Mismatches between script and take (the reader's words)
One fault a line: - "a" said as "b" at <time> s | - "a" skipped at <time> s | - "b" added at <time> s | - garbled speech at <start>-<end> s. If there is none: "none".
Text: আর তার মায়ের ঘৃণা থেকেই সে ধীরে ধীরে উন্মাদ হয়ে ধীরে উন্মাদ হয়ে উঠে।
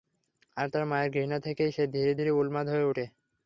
- "ধীরে উন্মাদ হয়ে" skipped at 2.9 s